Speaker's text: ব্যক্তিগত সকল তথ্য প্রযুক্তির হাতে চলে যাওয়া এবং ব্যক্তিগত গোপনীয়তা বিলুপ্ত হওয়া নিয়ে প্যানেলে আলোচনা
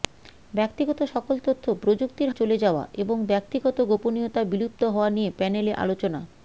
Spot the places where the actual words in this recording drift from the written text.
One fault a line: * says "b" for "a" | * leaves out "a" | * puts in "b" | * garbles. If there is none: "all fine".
* leaves out "হাতে"